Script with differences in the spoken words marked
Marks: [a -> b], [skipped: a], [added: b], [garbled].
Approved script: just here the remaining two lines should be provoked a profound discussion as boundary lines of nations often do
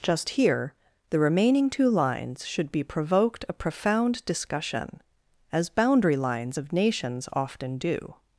just here the remaining two lines should be provoked a profound discussion as boundary lines of nations often do